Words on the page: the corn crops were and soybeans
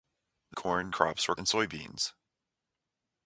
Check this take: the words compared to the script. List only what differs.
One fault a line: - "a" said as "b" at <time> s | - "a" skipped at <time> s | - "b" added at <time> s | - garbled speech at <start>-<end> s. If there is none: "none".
none